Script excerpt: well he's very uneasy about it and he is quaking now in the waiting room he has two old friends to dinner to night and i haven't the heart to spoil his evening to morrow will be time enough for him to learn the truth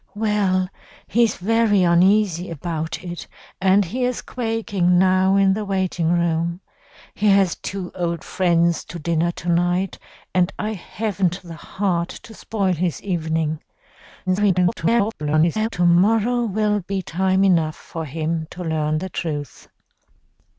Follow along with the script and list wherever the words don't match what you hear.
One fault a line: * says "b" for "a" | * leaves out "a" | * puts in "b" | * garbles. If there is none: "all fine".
* garbles